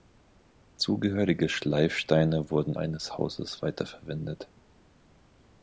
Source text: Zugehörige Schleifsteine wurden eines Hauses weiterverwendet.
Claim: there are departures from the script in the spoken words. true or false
false